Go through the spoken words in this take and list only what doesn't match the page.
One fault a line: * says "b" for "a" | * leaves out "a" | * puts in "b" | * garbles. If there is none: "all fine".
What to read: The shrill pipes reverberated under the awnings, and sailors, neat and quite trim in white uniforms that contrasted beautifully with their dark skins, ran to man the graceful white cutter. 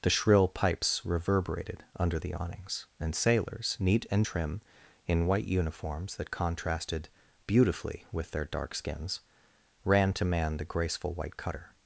* leaves out "quite"